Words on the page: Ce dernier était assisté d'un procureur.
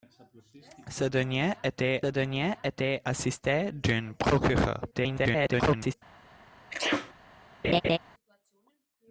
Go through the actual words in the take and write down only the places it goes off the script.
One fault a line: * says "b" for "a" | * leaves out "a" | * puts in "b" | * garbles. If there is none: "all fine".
* puts in "dernier était"
* garbles